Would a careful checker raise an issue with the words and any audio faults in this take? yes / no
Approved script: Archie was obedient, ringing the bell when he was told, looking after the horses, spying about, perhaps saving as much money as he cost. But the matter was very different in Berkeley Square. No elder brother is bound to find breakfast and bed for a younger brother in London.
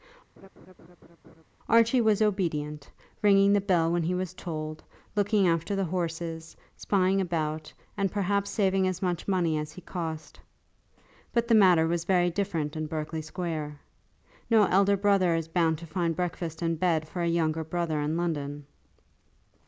yes